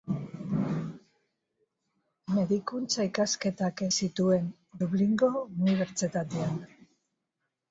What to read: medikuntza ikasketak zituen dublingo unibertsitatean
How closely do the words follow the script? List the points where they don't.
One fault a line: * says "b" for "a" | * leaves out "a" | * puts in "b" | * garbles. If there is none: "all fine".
all fine